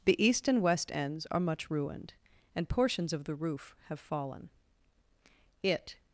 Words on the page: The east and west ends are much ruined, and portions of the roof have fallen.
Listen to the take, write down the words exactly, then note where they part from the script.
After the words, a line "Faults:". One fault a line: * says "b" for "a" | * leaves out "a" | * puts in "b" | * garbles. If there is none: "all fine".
The east and west ends are much ruined, and portions of the roof have fallen. It
Faults:
* puts in "It"